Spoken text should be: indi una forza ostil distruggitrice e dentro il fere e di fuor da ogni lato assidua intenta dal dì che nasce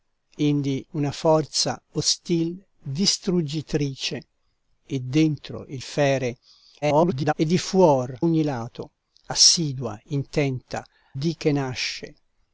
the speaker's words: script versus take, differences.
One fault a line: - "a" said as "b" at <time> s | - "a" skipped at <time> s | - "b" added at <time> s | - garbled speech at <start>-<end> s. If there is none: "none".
- garbled speech at 6.8-7.3 s
- "da" skipped at 8.2 s
- "dal" skipped at 10.8 s